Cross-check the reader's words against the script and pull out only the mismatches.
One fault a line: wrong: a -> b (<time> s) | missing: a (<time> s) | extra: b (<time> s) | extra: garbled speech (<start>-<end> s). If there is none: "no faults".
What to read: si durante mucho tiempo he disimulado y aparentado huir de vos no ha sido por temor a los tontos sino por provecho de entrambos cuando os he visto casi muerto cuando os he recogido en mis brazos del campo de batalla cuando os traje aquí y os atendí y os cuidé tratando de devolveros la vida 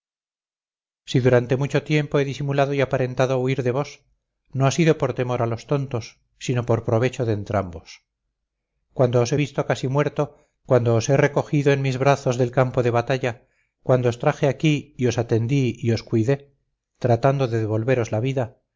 no faults